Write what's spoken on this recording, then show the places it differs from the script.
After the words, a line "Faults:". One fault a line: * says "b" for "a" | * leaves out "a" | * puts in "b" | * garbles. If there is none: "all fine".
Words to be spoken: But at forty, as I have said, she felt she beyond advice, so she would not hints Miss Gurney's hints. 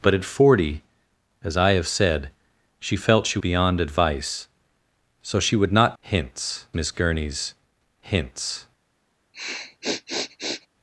But at forty, as I have said, she felt she beyond advice, so she would not hints Miss Gurney's hints.
Faults:
all fine